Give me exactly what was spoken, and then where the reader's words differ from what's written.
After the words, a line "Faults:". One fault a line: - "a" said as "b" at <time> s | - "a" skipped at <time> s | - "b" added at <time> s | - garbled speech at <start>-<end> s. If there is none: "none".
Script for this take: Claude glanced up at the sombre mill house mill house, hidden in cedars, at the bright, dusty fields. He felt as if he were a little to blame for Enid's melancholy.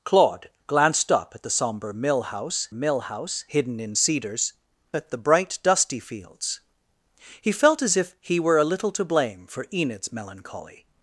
Claude glanced up at the sombre mill house mill house, hidden in cedars, at the bright, dusty fields. He felt as if he were a little to blame for Enid's melancholy.
Faults:
none